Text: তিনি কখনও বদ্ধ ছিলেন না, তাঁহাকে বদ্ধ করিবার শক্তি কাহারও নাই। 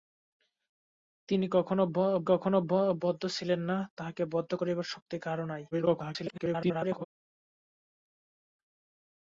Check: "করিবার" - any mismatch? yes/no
no